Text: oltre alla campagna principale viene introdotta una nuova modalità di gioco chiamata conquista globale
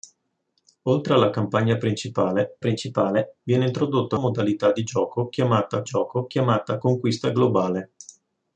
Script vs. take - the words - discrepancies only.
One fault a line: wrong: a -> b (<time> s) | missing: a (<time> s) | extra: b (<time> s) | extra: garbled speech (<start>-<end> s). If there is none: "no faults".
extra: principale (2.6 s)
wrong: una nuova modalità di -> modalità di gioco chiamata (4.1 s)